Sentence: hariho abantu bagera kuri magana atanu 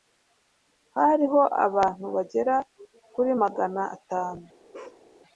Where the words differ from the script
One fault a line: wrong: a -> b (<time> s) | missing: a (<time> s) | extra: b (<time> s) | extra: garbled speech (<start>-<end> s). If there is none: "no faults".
no faults